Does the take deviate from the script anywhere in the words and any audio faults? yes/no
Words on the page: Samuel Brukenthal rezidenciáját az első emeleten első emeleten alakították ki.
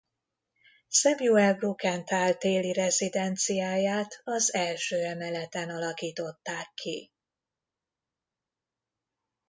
yes